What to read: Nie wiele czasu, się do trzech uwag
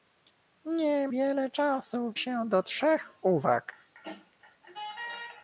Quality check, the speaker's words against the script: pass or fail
pass